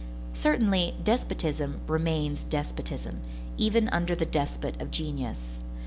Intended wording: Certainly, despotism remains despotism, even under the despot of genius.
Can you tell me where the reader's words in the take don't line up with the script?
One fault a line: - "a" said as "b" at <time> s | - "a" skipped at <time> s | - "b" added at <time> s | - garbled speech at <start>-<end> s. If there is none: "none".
none